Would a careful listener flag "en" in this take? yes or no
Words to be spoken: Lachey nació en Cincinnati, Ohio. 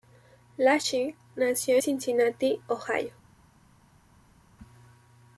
yes